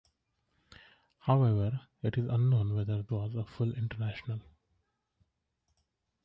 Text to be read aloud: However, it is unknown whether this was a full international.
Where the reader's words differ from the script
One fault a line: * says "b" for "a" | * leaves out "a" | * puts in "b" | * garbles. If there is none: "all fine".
* leaves out "this"